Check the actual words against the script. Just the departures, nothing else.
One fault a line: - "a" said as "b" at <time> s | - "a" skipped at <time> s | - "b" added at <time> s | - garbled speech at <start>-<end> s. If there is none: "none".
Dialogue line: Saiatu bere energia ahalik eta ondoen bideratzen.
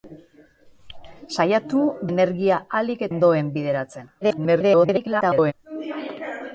- "bere" skipped at 1.8 s
- "eta" skipped at 3.1 s
- garbled speech at 4.2-5.5 s